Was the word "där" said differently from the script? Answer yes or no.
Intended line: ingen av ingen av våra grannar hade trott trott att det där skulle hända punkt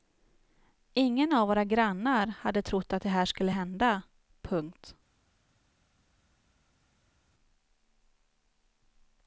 yes